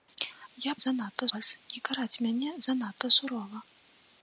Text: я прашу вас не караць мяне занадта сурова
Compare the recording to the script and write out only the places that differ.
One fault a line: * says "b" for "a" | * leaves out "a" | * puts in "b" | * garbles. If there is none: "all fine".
* says "занадта" for "прашу"